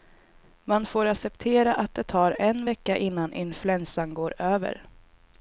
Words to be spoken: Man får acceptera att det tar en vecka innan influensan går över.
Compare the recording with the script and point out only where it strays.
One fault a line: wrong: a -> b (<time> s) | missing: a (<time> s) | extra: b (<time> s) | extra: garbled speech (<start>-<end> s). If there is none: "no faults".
no faults